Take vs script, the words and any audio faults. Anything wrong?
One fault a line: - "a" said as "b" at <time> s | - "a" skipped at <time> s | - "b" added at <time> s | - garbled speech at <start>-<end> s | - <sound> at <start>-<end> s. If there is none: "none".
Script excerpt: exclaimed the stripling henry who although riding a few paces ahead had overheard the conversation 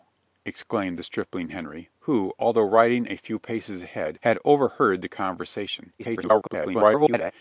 - garbled speech at 6.0-7.3 s